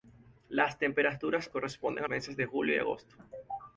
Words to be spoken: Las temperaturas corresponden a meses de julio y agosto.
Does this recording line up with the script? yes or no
yes